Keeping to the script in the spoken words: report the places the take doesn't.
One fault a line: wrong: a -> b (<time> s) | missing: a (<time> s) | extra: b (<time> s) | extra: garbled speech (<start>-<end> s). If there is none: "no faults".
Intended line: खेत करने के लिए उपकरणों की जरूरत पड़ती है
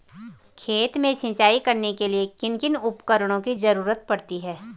extra: में सिंचाई (1.0 s)
extra: किन किन (2.4 s)